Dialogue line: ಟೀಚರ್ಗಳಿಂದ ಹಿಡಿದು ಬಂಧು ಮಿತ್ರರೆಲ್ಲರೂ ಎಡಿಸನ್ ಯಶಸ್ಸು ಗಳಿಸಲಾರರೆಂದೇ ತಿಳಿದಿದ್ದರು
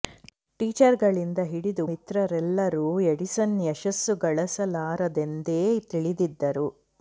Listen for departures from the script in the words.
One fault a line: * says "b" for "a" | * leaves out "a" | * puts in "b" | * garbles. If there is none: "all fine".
* leaves out "ಬಂಧು"